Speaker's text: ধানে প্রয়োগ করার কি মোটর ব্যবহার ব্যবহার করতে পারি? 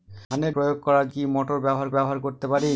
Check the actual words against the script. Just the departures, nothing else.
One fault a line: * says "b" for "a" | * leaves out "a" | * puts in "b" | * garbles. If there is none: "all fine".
all fine